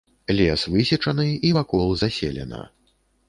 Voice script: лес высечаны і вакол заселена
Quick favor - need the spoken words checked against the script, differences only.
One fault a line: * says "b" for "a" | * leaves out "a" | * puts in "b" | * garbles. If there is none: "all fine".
all fine